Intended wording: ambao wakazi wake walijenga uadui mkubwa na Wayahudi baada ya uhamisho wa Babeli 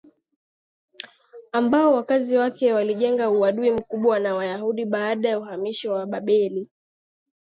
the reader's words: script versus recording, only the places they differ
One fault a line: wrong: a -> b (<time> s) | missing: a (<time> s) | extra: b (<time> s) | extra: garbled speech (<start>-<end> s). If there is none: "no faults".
no faults